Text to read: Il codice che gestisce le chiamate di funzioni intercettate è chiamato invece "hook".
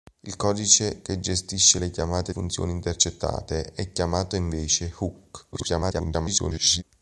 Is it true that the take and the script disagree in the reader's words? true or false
true